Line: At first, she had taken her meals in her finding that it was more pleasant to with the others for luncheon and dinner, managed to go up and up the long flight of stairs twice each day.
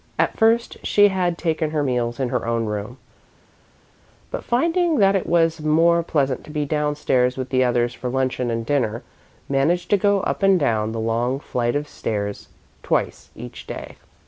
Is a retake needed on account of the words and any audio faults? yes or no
yes